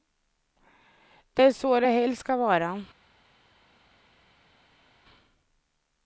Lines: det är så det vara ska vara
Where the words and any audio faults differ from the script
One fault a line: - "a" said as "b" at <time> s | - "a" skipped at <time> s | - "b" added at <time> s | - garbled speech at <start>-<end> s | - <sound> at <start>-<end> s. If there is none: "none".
- "vara" said as "helst" at 1.8 s